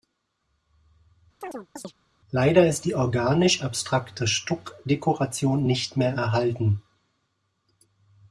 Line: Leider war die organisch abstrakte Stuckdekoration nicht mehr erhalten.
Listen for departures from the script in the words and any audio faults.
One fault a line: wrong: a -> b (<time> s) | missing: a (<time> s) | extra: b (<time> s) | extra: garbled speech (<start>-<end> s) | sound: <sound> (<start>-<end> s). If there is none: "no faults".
sound: chirp (1.4-1.9 s)
wrong: war -> ist (2.7 s)